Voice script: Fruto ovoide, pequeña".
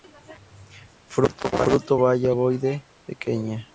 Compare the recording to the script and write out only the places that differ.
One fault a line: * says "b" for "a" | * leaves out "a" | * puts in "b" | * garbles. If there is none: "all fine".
* puts in "baya"